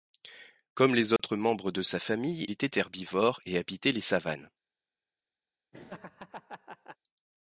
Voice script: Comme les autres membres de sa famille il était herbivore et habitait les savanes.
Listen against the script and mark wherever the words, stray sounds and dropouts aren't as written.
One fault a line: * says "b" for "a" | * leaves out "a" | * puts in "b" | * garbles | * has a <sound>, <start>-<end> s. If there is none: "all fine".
* has a dropout, 1.2-1.2 s
* leaves out "il"
* has a laugh, 5.7-7.0 s